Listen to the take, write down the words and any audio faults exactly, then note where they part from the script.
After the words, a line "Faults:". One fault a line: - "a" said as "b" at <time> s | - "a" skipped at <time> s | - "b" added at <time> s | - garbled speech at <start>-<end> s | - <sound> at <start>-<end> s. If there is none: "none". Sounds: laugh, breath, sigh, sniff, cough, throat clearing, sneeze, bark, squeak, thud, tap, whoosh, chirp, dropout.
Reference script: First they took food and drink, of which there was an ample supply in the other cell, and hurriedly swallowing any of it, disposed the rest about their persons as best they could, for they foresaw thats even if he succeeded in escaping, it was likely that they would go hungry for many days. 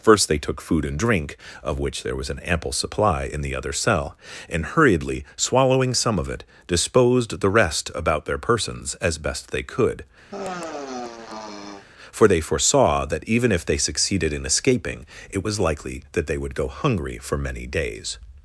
First they took food and drink, of which there was an ample supply in the other cell, and hurriedly swallowing some of it, disposed the rest about their persons as best they could, for they foresaw that even if they succeeded in escaping, it was likely that they would go hungry for many days.
Faults:
- "any" said as "some" at 5.9 s
- sigh at 10.3-11.9 s
- "thats" said as "that" at 13.1 s
- "he" said as "they" at 13.6 s